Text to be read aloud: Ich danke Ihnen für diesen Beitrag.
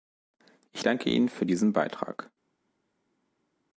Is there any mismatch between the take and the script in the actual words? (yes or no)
no